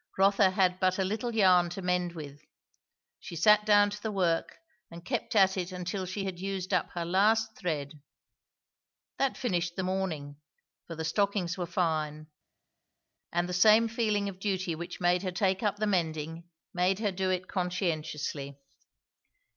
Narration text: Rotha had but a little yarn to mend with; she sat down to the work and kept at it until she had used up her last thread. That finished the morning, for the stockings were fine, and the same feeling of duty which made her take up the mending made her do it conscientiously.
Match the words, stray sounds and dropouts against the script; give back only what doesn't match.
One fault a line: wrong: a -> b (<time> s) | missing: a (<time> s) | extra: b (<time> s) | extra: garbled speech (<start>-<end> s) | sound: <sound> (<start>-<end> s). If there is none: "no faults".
no faults